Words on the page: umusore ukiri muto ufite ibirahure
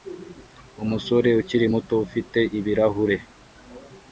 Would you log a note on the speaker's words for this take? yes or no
no